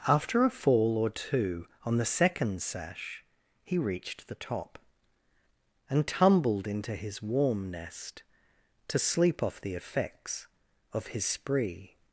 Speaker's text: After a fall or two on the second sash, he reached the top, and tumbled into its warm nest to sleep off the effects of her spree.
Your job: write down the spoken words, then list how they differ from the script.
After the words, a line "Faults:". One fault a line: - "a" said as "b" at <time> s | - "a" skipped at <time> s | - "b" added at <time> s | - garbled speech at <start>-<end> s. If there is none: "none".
After a fall or two on the second sash, he reached the top, and tumbled into his warm nest to sleep off the effects of his spree.
Faults:
- "its" said as "his" at 7.0 s
- "her" said as "his" at 11.1 s